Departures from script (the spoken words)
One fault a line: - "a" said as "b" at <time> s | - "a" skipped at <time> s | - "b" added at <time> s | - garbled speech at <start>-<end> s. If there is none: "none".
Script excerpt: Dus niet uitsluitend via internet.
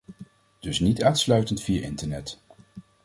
none